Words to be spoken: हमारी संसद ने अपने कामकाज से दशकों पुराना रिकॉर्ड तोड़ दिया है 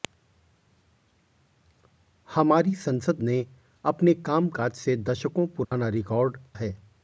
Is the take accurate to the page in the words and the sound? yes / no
no